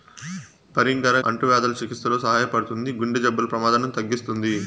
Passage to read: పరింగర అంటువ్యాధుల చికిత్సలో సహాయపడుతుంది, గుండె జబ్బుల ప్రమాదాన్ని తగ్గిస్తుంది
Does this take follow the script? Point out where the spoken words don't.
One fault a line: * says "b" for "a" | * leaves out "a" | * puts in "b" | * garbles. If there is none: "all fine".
all fine